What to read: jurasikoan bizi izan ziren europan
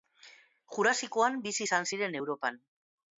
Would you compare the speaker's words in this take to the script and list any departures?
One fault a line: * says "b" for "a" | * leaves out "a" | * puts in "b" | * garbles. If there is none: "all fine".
all fine